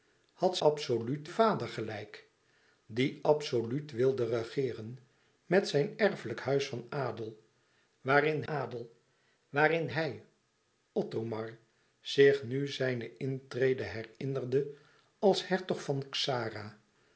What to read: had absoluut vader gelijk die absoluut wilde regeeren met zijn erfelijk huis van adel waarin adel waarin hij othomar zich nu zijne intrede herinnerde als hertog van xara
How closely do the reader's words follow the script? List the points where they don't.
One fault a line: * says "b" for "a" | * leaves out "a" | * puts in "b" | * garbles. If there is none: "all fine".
all fine